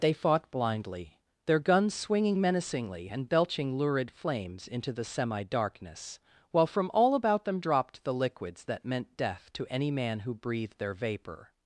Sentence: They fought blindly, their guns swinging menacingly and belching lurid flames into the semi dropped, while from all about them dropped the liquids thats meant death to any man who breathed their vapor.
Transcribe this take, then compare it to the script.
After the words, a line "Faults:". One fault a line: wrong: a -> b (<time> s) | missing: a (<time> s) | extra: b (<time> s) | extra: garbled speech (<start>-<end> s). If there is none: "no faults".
They fought blindly, their guns swinging menacingly and belching lurid flames into the semi darkness, while from all about them dropped the liquids that meant death to any man who breathed their vapor.
Faults:
wrong: dropped -> darkness (5.4 s)
wrong: thats -> that (8.6 s)